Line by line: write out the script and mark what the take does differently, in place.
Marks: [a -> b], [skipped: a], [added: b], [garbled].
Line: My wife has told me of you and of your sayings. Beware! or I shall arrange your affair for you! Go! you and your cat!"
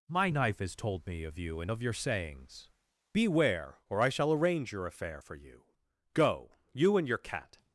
My [wife -> knife] has told me of you and of your sayings. Beware! or I shall arrange your affair for you! Go! you and your cat!"